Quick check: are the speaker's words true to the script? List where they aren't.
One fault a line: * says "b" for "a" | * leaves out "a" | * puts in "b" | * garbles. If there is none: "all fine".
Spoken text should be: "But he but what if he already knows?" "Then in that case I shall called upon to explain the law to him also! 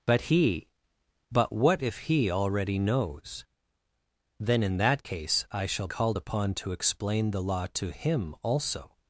all fine